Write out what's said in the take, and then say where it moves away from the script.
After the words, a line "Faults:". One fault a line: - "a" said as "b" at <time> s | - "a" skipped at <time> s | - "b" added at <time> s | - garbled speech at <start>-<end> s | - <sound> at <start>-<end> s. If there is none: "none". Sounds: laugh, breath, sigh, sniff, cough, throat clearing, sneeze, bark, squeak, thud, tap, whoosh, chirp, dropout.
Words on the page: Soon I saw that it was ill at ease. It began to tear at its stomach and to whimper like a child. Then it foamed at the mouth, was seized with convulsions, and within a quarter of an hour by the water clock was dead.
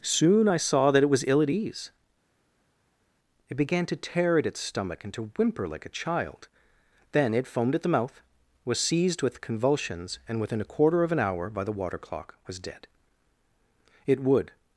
Soon I saw that it was ill at ease. It began to tear at its stomach and to whimper like a child. Then it foamed at the mouth, was seized with convulsions, and within a quarter of an hour by the water clock was dead. "It would
Faults:
- "It would" added at 14.1 s